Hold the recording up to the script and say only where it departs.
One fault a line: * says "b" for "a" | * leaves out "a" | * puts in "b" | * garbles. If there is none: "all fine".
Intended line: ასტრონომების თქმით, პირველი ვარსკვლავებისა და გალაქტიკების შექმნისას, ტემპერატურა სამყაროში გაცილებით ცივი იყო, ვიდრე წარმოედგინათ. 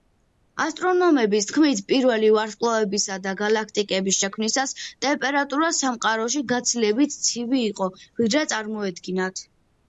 all fine